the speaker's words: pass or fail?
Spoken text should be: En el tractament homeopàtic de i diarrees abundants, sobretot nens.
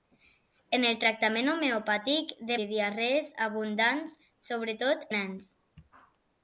pass